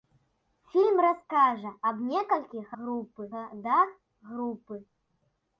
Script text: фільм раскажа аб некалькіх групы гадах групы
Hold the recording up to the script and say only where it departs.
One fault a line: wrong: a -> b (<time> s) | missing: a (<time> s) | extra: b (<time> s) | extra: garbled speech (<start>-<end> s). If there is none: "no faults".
no faults